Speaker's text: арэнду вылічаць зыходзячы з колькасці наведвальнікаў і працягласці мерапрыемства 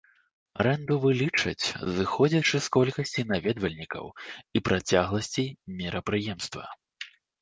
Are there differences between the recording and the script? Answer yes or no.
no